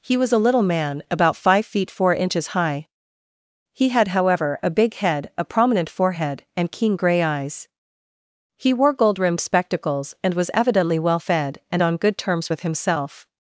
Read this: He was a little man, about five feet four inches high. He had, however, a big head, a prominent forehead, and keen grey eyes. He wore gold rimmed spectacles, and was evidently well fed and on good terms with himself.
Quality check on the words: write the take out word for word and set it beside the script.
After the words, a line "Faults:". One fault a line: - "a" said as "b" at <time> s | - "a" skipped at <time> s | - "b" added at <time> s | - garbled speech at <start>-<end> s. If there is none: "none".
He was a little man, about five feet four inches high. He had, however, a big head, a prominent forehead, and keen grey eyes. He wore gold rimmed spectacles, and was evidently well fed and on good terms with himself.
Faults:
none